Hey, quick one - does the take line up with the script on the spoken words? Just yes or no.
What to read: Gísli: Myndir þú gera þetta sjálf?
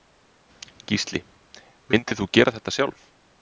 yes